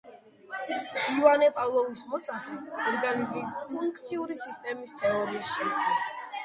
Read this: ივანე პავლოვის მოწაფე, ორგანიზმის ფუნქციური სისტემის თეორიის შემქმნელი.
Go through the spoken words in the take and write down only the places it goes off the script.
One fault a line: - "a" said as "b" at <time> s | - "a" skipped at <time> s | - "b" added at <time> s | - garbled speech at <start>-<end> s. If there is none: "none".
none